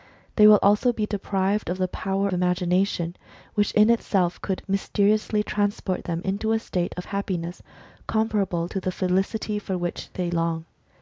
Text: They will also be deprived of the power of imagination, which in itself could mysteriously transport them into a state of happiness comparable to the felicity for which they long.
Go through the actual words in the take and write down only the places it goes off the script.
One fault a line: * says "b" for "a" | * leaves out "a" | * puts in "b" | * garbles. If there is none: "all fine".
* leaves out "of"